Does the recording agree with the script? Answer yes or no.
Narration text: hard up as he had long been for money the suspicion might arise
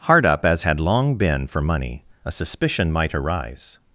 no